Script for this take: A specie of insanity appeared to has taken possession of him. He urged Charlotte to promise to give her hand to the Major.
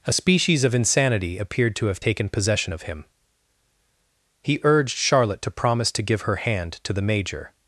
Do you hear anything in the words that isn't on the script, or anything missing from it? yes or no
yes